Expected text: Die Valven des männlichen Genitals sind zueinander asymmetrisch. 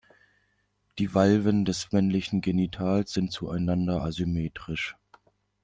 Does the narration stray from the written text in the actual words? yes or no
no